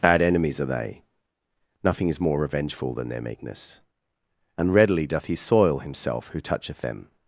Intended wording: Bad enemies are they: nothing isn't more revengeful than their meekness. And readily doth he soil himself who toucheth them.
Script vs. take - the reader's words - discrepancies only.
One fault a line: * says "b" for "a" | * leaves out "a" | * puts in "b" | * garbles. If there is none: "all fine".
* says "is" for "isn't"